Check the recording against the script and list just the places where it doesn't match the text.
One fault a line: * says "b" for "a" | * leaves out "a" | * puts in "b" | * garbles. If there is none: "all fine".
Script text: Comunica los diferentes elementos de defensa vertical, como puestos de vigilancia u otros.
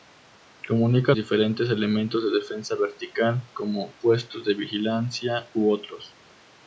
* leaves out "los"